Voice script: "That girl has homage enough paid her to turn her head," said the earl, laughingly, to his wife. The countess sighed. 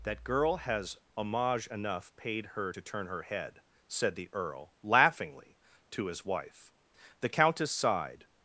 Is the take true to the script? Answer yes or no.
yes